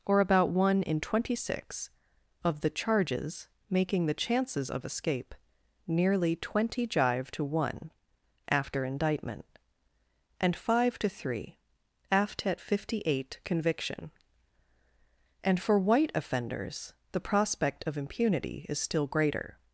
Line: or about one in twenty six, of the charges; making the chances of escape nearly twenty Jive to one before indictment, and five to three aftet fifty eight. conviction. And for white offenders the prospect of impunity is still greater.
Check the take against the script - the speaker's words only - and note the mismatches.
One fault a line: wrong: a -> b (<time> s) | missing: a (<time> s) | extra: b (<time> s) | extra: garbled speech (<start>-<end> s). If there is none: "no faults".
wrong: before -> after (8.5 s)